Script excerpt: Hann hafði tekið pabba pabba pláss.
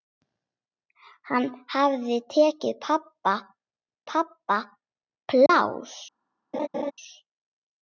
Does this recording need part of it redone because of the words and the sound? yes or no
yes